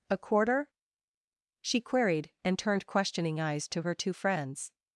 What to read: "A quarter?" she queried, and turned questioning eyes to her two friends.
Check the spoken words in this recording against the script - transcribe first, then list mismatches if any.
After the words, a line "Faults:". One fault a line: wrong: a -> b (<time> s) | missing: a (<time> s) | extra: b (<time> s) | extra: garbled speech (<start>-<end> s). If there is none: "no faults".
"A quarter?" she queried, and turned questioning eyes to her two friends.
Faults:
no faults